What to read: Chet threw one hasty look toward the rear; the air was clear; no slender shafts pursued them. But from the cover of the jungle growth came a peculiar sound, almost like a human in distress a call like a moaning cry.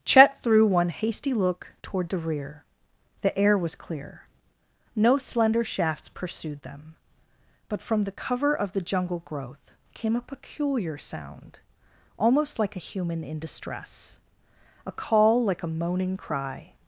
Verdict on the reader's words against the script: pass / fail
pass